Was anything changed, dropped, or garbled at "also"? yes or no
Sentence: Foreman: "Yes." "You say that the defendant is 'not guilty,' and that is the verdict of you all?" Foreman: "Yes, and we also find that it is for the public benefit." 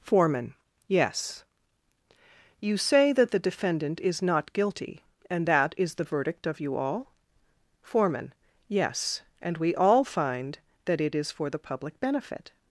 yes